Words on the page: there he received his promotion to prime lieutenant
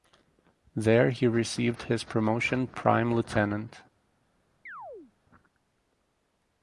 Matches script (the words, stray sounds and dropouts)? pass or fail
fail